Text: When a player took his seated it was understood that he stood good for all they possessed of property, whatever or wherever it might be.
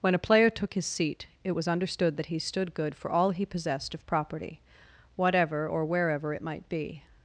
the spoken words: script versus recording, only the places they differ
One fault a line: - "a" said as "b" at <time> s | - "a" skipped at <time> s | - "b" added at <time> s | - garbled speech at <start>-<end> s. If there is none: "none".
- "seated" said as "seat" at 0.9 s
- "they" said as "he" at 3.3 s